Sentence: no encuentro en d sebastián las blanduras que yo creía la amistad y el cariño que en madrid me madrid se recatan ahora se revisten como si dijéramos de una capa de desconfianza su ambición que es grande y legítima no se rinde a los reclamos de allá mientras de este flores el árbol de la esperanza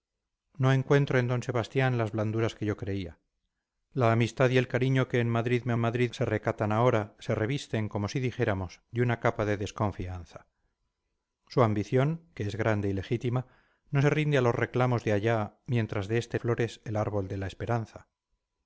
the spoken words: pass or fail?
pass